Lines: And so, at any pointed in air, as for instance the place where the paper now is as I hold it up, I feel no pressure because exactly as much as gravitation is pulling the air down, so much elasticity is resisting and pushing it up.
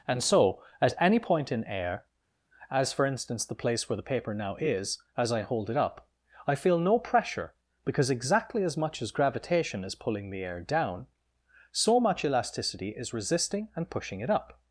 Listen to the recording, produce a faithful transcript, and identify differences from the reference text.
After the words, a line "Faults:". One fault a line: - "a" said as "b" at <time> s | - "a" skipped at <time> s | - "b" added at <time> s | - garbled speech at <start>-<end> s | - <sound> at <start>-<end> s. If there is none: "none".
And so, at any point in air, as for instance the place where the paper now is as I hold it up, I feel no pressure because exactly as much as gravitation is pulling the air down, so much elasticity is resisting and pushing it up.
Faults:
- "pointed" said as "point" at 1.2 s